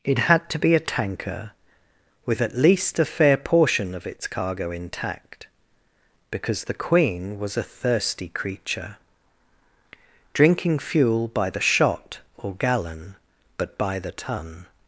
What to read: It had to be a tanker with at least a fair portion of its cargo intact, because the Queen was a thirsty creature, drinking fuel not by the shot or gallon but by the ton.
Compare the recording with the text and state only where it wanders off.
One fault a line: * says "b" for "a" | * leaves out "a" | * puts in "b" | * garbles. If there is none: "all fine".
* leaves out "not"